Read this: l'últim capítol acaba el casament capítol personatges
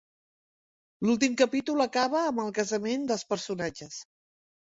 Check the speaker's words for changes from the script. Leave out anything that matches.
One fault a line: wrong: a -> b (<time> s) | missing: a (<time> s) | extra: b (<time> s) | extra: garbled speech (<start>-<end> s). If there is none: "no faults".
extra: amb (2.3 s)
wrong: capítol -> dels (3.1 s)